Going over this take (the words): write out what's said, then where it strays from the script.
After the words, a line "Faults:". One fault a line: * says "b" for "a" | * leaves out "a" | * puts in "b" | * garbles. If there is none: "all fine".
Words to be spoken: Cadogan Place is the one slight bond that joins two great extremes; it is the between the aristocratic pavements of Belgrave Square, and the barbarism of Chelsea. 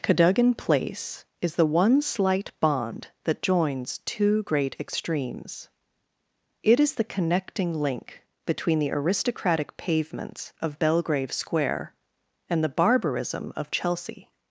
Cadogan Place is the one slight bond that joins two great extremes; it is the connecting link between the aristocratic pavements of Belgrave Square, and the barbarism of Chelsea.
Faults:
* puts in "connecting link"